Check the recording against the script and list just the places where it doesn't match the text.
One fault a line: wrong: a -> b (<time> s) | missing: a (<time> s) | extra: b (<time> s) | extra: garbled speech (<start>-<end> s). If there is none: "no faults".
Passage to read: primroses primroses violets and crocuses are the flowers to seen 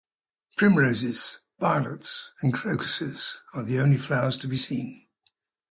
missing: primroses (1.4 s)
extra: only (3.8 s)
extra: be (4.5 s)